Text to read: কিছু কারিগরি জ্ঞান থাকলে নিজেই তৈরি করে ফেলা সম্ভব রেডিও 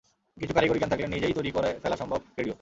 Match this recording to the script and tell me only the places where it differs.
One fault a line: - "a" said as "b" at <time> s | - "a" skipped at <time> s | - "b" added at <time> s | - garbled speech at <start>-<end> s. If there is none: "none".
none